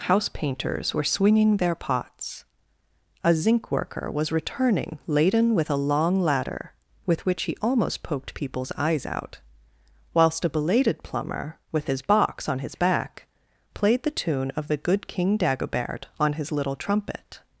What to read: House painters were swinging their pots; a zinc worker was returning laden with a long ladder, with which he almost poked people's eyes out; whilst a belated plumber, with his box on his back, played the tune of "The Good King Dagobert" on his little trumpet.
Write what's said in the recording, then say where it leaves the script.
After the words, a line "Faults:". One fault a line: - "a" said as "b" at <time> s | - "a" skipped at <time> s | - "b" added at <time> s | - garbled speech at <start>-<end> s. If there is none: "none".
House painters were swinging their pots; a zinc worker was returning laden with a long ladder, with which he almost poked people's eyes out; whilst a belated plumber, with his box on his back, played the tune of "The Good King Dagobert" on his little trumpet.
Faults:
none